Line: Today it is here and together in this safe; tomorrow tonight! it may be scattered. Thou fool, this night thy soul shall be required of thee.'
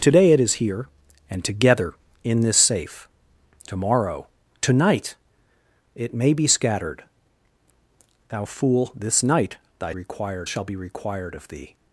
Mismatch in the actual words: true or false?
true